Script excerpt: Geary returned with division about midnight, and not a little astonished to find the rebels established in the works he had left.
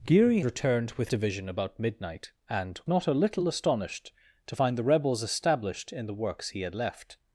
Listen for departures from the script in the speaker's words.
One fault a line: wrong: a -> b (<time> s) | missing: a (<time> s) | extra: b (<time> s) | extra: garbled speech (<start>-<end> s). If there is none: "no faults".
no faults